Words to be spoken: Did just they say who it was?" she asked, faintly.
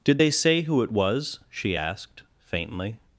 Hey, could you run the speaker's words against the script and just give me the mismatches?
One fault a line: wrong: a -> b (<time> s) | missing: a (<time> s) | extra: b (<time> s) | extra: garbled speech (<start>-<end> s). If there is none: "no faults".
missing: just (0.2 s)